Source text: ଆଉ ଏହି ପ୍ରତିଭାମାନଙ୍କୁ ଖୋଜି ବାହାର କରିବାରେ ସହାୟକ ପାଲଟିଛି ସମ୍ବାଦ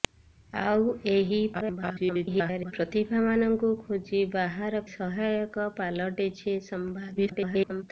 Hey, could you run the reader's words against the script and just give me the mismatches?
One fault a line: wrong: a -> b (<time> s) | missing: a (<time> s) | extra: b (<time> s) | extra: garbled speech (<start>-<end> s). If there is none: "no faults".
extra: garbled speech (1.5-2.7 s)
missing: କରିବାରେ (4.8 s)
extra: garbled speech (7.2-7.8 s)